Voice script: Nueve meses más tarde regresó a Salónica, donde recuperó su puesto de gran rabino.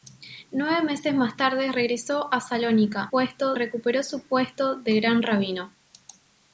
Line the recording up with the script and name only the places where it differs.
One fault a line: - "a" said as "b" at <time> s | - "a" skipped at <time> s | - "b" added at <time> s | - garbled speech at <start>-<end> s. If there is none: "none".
- "donde" said as "puesto" at 3.1 s